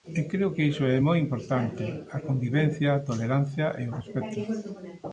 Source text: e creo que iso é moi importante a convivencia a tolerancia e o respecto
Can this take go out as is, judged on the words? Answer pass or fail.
pass